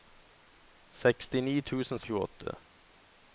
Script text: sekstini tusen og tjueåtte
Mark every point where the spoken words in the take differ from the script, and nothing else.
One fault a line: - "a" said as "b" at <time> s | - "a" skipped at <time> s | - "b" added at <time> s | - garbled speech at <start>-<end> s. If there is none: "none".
none